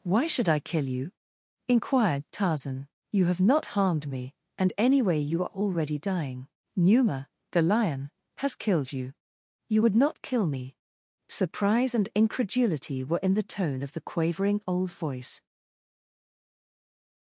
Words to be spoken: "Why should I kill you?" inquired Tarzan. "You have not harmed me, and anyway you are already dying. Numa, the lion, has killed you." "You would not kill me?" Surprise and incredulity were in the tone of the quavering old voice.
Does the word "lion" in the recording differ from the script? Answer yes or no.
no